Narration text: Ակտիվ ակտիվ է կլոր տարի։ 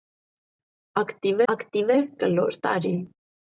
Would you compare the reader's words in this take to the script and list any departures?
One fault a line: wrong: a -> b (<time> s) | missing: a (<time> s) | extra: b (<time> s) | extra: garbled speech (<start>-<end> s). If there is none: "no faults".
no faults